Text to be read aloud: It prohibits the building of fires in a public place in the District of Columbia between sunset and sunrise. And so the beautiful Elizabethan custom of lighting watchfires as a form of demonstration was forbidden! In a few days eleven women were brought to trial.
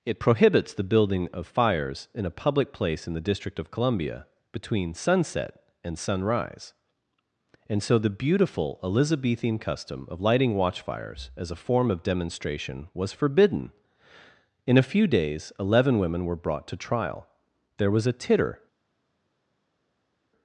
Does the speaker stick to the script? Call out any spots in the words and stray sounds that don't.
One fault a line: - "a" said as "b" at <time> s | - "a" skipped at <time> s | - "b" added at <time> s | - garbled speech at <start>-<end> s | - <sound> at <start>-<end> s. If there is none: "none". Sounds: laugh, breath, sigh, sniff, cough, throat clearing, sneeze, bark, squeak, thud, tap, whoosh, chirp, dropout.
- "There was a titter" added at 17.8 s